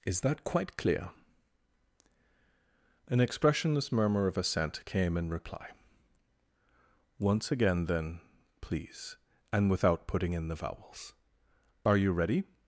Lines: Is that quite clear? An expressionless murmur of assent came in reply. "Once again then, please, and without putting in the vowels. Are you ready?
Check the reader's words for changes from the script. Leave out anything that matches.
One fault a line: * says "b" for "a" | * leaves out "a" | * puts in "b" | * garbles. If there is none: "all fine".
all fine